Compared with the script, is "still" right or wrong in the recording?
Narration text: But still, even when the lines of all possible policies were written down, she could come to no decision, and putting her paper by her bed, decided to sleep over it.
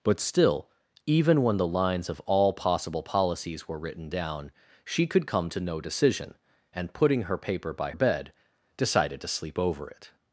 right